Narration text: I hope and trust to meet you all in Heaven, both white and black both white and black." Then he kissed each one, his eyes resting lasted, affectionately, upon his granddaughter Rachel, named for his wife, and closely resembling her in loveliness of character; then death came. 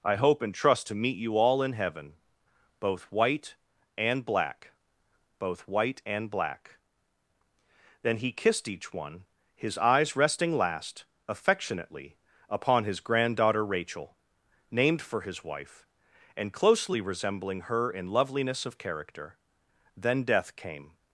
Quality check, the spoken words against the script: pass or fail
fail